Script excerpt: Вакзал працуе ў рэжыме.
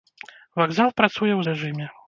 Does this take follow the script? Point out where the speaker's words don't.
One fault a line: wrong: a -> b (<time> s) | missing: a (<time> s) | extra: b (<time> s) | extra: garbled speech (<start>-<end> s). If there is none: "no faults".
no faults